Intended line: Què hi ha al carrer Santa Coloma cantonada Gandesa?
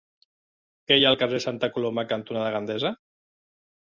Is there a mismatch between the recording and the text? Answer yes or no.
no